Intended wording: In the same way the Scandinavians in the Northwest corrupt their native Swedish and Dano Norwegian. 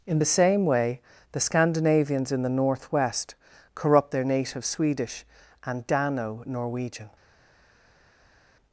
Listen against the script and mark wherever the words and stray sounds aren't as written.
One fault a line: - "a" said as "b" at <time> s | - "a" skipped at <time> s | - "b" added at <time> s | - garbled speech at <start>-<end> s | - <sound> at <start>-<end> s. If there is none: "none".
none